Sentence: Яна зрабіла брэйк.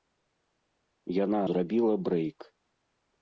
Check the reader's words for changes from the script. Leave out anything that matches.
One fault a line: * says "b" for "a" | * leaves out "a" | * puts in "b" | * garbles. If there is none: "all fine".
all fine